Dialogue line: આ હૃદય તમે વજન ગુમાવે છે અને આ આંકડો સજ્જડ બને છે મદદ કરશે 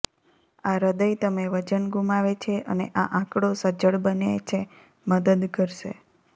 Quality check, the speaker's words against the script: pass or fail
pass